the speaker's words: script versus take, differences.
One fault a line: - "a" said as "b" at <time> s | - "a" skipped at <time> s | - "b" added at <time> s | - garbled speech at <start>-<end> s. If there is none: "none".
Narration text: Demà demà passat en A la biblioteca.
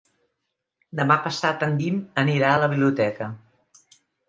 - "demà" skipped at 1.2 s
- "Guim anirà" added at 1.8 s